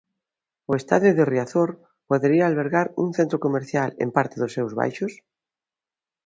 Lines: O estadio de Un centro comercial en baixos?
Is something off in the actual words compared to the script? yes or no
yes